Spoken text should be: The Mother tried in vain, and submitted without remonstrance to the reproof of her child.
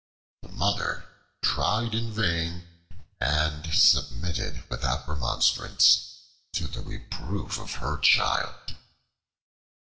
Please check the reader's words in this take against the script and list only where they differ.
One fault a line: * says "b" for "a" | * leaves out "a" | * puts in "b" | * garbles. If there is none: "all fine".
all fine